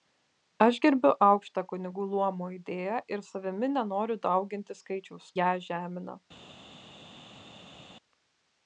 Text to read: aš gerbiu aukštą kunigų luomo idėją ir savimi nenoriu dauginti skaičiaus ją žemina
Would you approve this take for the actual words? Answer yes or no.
yes